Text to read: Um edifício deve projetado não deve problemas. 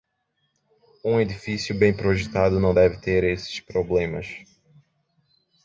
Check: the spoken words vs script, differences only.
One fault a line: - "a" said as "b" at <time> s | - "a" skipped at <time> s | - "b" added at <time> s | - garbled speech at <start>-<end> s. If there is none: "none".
- "deve" said as "bem" at 1.8 s
- "ter esses" added at 3.0 s